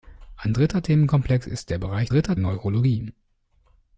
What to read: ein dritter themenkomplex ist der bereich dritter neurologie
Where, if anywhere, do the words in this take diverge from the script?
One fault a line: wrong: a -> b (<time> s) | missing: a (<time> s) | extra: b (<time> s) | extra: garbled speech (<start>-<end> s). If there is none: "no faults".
no faults